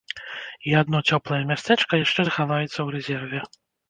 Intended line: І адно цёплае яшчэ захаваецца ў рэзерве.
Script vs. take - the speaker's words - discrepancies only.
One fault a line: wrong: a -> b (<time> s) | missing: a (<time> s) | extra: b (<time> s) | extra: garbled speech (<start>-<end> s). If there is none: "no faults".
extra: мястэчка (1.5 s)